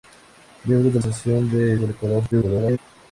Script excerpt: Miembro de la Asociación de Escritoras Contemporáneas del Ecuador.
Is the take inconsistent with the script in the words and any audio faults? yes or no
yes